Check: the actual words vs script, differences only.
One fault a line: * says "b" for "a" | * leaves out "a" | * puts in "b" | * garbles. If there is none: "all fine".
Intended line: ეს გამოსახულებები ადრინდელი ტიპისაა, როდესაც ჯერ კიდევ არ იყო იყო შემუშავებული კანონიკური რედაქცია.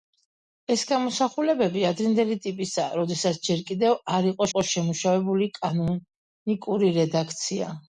all fine